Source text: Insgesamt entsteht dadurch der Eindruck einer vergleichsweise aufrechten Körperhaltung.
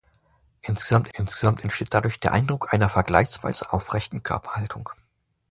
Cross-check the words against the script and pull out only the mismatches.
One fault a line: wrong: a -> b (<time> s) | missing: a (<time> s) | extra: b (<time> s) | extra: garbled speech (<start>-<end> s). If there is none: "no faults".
extra: insgesamt (1.1 s)